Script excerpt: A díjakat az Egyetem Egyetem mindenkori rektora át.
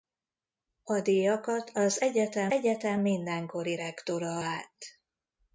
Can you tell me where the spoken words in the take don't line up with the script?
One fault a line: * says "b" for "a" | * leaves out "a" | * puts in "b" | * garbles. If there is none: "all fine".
all fine